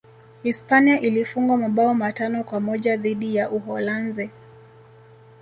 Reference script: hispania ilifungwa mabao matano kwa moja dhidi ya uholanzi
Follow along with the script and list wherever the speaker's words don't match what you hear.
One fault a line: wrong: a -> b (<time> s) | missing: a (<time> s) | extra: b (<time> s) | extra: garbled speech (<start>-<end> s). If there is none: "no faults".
no faults